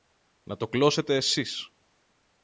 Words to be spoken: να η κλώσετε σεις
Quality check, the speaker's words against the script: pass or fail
fail